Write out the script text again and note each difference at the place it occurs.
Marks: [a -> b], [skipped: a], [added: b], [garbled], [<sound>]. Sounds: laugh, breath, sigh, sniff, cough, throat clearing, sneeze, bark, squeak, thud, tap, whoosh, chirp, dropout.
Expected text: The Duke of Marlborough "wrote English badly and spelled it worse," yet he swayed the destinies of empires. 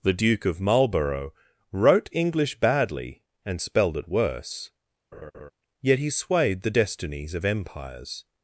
The Duke of Marlborough "wrote English badly and spelled it worse," [laugh] yet he swayed the destinies of empires.